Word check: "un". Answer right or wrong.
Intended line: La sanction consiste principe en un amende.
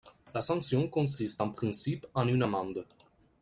wrong